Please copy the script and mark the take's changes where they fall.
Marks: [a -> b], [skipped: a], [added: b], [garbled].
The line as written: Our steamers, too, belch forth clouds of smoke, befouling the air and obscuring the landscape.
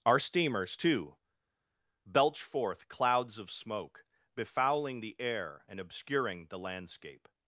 Our steamers, too, belch forth clouds of smoke, befouling the air and obscuring the landscape.